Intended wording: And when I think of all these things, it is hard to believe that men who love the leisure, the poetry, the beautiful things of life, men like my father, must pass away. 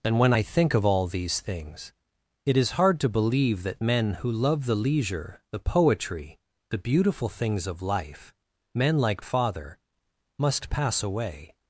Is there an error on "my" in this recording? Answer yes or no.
yes